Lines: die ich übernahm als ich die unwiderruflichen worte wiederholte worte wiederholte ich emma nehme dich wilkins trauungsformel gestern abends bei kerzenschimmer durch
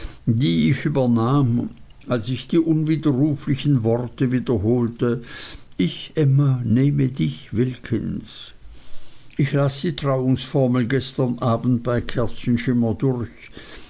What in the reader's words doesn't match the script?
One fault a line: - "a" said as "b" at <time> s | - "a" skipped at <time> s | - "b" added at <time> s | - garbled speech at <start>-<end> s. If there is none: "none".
- "worte wiederholte" skipped at 5.2 s
- "ich las die" added at 9.4 s